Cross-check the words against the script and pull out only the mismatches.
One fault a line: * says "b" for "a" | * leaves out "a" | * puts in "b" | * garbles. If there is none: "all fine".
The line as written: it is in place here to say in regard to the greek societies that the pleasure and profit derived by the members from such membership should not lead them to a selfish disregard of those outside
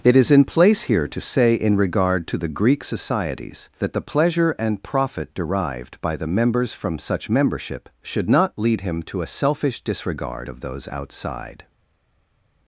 * says "him" for "them"